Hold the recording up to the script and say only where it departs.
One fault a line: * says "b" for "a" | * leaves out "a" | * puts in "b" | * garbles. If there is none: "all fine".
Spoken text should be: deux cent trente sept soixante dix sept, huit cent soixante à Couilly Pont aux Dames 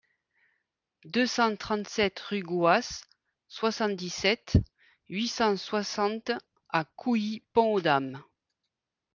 * puts in "rue Gouas"